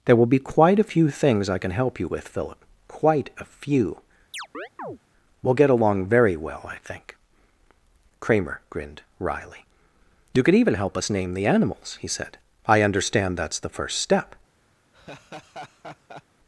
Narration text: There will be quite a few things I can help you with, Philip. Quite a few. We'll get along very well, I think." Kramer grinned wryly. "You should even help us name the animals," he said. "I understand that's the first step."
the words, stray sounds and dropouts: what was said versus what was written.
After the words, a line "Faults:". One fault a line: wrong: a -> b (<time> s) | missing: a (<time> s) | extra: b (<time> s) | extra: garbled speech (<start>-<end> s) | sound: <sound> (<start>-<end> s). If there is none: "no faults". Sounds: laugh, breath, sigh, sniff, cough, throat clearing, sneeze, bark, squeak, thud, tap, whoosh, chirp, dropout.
There will be quite a few things I can help you with, Philip. Quite a few. We'll get along very well, I think." Kramer grinned wryly. "You could even help us name the animals," he said. "I understand that's the first step."
Faults:
sound: chirp (4.3-5.0 s)
wrong: should -> could (10.4 s)
sound: laugh (14.9-16.2 s)